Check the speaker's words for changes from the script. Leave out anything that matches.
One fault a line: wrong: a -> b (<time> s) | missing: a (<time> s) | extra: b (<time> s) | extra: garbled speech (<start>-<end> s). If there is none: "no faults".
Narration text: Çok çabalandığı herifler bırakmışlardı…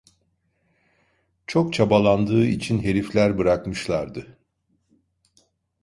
extra: için (2.4 s)